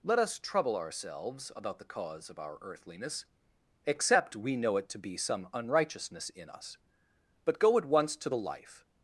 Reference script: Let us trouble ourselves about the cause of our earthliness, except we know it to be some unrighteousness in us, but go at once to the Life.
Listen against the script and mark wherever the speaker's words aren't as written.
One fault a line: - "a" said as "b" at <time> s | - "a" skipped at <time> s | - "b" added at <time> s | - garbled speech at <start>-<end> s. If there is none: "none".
none